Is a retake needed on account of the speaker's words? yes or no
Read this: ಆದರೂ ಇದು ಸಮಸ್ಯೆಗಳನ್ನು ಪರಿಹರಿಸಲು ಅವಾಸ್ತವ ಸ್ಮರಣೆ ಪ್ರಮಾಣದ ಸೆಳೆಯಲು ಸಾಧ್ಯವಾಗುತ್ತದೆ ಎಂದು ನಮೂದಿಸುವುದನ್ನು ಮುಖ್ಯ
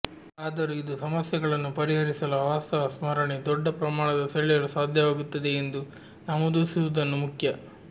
yes